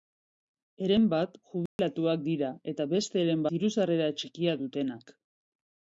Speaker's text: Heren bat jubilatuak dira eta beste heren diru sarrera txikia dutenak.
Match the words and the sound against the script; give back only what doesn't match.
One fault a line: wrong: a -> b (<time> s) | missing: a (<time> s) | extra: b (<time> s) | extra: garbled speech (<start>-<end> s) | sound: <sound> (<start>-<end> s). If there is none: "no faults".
sound: dropout (1.7-1.8 s)